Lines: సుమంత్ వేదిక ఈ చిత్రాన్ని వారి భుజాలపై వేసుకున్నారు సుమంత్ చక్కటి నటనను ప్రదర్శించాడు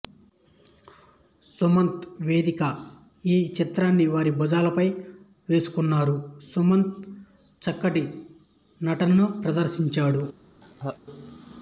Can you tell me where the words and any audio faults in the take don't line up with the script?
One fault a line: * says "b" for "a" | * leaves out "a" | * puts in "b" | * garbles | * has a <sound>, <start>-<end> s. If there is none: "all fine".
* has a laugh, 10.6-11.0 s